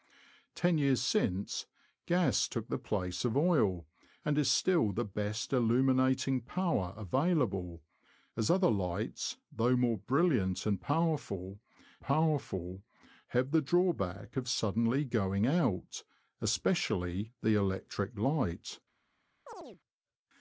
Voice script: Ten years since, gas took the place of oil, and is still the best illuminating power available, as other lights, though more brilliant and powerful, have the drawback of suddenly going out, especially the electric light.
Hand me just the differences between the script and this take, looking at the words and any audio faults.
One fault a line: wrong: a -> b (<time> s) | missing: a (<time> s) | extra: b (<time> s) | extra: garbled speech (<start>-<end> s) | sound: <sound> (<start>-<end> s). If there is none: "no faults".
extra: powerful (12.0 s)
sound: chirp (19.5-19.8 s)